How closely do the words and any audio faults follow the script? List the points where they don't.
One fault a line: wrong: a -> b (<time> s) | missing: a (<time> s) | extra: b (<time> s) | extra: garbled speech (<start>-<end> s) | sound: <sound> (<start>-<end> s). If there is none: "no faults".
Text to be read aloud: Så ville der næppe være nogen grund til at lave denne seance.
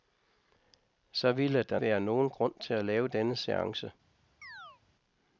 missing: næppe (1.8 s)
sound: chirp (4.4-4.8 s)